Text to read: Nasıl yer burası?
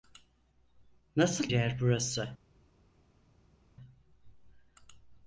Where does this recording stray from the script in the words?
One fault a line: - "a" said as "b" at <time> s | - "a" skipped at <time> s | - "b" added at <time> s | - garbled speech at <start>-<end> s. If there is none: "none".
none